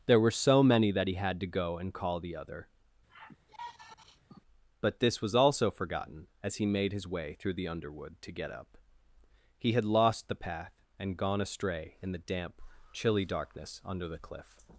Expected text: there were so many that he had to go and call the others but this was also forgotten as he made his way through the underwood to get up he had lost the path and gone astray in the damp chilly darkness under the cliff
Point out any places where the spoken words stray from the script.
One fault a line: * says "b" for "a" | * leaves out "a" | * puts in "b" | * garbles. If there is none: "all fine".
* says "other" for "others"